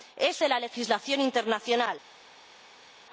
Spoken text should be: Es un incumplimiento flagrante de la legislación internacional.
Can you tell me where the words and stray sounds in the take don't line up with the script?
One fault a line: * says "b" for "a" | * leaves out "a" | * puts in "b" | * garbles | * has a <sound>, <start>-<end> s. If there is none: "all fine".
* leaves out "un incumplimiento flagrante"